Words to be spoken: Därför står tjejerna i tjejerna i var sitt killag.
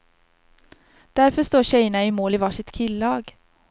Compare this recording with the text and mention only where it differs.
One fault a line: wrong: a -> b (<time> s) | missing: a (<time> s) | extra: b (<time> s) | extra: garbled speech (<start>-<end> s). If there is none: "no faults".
wrong: tjejerna -> mål (2.1 s)